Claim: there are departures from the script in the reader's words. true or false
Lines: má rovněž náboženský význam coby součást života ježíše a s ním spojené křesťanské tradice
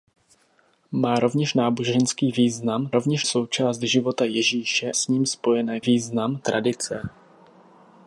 true